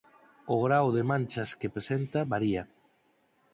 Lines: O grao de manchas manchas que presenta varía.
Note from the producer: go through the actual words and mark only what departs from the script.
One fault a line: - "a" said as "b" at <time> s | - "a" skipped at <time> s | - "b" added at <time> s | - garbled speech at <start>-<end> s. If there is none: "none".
- "manchas" skipped at 1.5 s